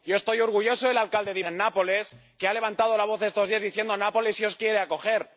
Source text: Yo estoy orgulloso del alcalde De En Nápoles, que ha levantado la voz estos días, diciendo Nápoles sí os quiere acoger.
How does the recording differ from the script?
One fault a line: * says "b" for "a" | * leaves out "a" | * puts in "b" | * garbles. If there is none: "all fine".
all fine